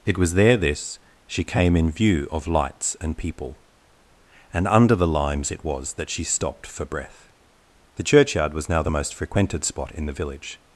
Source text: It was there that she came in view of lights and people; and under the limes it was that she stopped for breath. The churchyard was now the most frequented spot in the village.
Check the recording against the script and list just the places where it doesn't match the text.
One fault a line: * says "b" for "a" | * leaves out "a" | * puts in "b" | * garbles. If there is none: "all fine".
* says "this" for "that"